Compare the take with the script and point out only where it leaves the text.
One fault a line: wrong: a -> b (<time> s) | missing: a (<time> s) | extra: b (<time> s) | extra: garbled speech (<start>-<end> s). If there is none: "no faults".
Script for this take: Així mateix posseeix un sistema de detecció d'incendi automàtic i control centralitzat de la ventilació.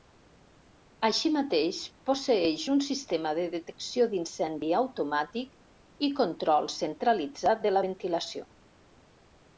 no faults